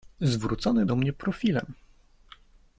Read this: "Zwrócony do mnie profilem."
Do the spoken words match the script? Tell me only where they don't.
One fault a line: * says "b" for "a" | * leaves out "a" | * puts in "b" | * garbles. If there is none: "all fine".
all fine